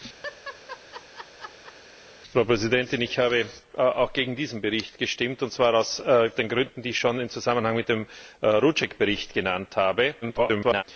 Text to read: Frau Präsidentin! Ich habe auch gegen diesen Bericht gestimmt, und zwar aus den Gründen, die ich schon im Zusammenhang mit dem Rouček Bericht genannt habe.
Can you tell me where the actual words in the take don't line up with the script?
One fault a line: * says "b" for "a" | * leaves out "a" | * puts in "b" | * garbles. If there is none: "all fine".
* garbles